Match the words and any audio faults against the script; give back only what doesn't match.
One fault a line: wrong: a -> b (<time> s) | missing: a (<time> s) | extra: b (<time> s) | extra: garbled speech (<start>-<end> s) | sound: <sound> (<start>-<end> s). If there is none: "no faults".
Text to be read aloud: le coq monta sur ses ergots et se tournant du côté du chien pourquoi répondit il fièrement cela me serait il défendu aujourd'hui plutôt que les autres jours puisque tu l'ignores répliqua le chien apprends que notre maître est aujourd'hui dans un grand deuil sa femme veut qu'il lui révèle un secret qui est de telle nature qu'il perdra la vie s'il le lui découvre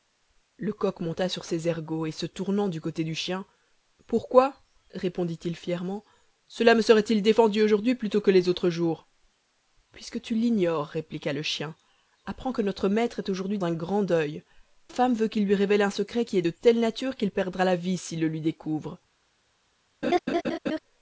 missing: dans (13.6 s)
missing: sa (14.4 s)
sound: laugh (20.0-20.8 s)